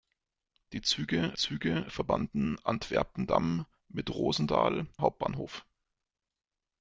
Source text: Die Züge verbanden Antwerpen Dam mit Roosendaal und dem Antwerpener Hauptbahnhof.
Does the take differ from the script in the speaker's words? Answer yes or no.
yes